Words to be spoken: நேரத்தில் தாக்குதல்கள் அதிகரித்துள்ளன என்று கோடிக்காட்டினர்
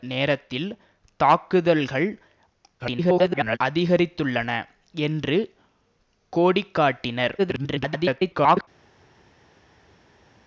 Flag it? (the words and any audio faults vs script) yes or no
yes